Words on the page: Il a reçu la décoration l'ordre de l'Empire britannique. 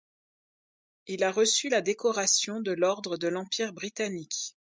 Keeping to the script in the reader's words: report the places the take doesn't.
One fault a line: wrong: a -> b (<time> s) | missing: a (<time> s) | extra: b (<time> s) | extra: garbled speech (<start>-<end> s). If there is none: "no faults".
extra: de (2.6 s)